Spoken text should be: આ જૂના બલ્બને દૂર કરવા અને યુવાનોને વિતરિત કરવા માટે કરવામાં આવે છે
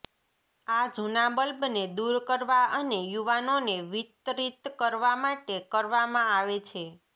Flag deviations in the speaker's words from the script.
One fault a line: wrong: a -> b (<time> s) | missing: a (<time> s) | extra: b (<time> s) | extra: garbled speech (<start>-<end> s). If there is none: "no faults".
no faults